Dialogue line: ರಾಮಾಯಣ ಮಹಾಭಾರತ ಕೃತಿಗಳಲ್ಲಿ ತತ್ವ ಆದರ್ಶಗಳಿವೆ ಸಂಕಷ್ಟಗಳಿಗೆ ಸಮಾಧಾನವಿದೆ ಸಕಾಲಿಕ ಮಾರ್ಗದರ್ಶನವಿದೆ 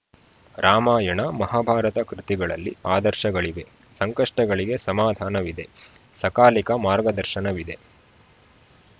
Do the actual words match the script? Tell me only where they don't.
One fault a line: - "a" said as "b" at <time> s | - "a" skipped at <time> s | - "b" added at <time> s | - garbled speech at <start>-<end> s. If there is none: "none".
- "ತತ್ವ" skipped at 2.7 s